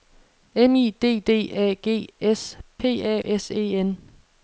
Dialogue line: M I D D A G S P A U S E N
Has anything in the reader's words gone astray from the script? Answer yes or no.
yes